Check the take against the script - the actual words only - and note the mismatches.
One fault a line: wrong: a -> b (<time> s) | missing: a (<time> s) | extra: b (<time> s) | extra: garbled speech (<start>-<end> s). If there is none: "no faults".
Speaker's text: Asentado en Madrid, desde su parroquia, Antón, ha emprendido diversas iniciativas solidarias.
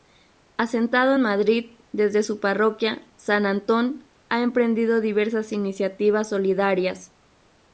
extra: San (3.2 s)